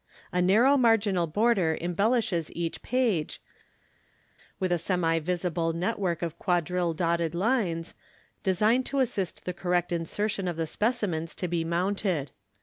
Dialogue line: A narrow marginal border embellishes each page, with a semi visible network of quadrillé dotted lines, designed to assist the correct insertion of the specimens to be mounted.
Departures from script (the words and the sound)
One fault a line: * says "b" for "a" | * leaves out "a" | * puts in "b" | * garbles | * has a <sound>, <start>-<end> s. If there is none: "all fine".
all fine